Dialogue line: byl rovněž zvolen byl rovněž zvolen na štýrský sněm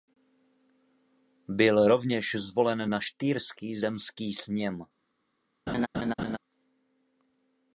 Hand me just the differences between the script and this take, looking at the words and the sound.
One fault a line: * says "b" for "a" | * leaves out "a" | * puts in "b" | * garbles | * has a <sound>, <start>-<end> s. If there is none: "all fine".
* leaves out "byl rovněž zvolen"
* puts in "zemský"
* has a laugh, 5.7-6.4 s